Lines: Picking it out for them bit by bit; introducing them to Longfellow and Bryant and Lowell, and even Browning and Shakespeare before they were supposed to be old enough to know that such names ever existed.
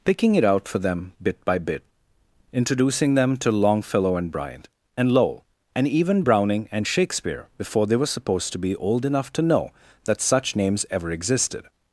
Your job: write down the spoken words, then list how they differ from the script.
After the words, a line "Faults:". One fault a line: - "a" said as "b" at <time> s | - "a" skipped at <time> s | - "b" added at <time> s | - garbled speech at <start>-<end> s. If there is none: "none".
Picking it out for them bit by bit; introducing them to Longfellow and Bryant and Lowell, and even Browning and Shakespeare before they were supposed to be old enough to know that such names ever existed.
Faults:
none